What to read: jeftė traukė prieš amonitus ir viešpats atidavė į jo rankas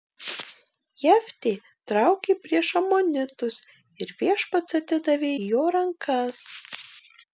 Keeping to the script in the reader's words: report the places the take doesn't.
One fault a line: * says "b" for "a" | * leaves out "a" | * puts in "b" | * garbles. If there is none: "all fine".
all fine